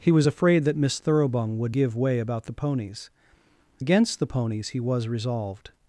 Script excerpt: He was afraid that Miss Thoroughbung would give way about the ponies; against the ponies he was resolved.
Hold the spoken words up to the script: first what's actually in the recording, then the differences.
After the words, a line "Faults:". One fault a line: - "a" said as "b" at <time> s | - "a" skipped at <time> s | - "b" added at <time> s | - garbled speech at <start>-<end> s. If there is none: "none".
He was afraid that Miss Thoroughbung would give way about the ponies; against the ponies he was resolved.
Faults:
none